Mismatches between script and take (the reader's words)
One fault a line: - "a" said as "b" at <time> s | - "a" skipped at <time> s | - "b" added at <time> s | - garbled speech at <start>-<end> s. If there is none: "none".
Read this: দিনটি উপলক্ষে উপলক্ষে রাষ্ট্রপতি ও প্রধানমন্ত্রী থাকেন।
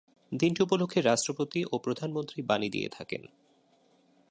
- "উপলক্ষে" skipped at 1.0 s
- "বাণী দিয়ে" added at 2.4 s